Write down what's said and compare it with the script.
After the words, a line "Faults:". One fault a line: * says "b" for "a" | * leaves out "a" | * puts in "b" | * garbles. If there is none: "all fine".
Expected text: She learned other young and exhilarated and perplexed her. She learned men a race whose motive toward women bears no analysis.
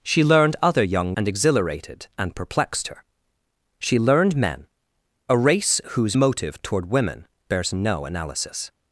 She learned other young and exhilarated and perplexed her. She learned men a race whose motive toward women bears no analysis.
Faults:
all fine